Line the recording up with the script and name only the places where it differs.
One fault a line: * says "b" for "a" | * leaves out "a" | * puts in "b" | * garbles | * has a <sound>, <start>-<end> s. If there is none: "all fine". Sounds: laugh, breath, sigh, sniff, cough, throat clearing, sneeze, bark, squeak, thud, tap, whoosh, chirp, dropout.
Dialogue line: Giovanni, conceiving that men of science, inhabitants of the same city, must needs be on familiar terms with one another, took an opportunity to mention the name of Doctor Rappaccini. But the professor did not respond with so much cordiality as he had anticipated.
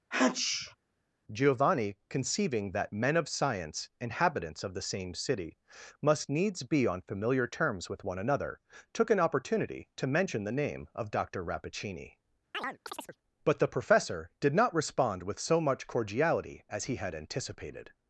* has a sneeze, 0.1-0.8 s
* has a chirp, 12.5-13.2 s